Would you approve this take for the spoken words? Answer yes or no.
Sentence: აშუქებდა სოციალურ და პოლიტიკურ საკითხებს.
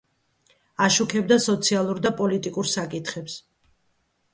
yes